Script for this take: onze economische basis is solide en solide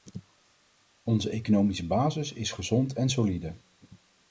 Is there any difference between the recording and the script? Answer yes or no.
yes